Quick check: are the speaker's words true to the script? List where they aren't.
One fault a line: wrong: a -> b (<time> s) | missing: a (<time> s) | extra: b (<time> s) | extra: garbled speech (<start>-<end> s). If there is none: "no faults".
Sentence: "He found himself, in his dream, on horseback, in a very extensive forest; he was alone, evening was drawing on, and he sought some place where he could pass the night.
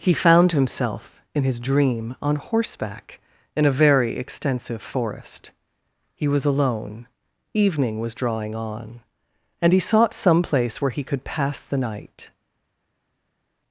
no faults